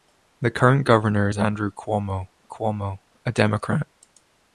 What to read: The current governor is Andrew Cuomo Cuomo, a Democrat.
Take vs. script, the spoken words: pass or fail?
pass